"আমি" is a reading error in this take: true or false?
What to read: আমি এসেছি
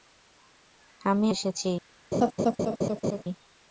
false